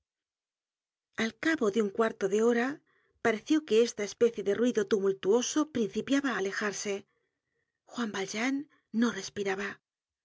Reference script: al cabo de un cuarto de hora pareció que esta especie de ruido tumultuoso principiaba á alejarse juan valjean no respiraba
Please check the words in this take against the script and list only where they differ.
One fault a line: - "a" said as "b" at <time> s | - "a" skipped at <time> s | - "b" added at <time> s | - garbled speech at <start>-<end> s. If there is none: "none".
none